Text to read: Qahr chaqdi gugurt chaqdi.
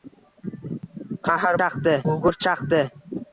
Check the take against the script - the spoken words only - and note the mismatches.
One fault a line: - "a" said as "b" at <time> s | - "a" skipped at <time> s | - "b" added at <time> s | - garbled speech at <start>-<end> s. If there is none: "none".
none